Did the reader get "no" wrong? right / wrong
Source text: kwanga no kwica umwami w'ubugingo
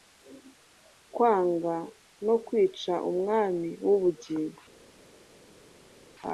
right